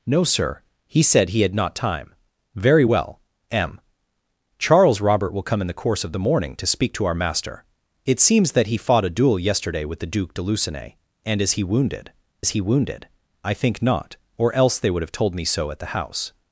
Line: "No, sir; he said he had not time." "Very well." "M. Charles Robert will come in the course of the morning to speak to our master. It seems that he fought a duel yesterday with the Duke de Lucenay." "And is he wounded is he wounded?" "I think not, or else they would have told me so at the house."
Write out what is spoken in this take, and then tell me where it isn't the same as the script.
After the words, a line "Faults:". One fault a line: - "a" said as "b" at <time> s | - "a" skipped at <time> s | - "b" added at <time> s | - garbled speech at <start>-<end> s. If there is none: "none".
"No, sir; he said he had not time." "Very well." "M. Charles Robert will come in the course of the morning to speak to our master. It seems that he fought a duel yesterday with the Duke de Lucenay." "And is he wounded is he wounded?" "I think not, or else they would have told me so at the house."
Faults:
none